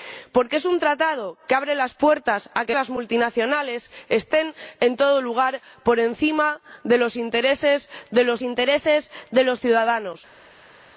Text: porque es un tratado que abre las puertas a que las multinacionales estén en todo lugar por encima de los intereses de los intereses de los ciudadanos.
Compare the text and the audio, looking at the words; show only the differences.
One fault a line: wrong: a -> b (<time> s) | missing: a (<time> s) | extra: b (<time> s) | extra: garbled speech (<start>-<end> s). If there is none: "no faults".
no faults